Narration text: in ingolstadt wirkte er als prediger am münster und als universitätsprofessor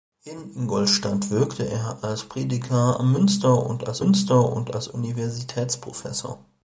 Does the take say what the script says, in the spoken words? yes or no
no